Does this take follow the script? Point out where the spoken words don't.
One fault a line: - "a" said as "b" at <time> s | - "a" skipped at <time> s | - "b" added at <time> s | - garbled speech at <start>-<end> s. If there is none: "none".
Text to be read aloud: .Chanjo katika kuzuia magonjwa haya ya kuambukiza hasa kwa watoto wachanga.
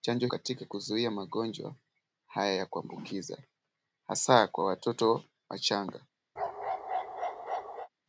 none